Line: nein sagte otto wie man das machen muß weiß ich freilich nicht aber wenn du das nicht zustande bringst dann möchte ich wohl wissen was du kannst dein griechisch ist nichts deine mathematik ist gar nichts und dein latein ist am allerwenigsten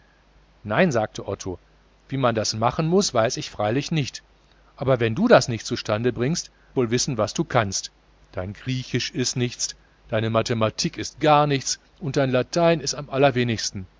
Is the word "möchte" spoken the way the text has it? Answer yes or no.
no